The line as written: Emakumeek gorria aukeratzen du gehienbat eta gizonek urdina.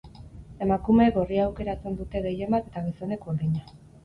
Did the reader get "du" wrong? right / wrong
wrong